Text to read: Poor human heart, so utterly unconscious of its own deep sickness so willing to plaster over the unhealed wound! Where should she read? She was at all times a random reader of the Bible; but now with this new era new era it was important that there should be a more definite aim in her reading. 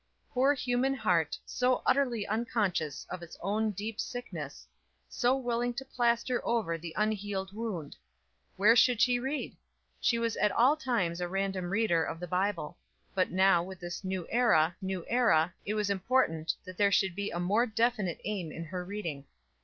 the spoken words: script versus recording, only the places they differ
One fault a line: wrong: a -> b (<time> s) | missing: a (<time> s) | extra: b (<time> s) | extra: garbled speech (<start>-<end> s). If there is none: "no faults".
no faults